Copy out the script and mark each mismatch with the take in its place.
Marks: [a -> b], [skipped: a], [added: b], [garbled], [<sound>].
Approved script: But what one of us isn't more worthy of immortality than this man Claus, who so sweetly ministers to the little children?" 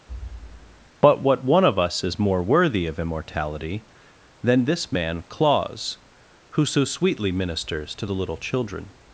[thud] But what one of us [isn't -> is] more worthy of immortality than this man Claus, who so sweetly ministers to the little children?"